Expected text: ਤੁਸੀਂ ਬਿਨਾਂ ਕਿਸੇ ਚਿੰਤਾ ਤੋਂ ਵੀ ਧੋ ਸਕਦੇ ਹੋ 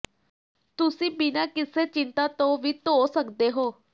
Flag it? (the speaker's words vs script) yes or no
no